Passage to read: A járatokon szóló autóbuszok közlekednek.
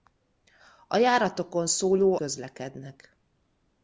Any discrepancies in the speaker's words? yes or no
yes